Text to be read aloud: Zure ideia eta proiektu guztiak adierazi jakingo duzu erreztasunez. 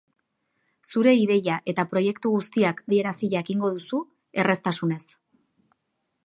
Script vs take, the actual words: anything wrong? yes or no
no